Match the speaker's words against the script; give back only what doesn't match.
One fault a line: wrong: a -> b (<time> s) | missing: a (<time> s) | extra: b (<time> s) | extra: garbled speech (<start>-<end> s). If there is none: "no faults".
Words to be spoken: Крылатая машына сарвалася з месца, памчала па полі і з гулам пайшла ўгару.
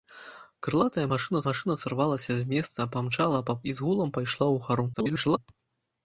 extra: машына (1.5 s)
missing: полі (3.6 s)
extra: garbled speech (4.9-5.4 s)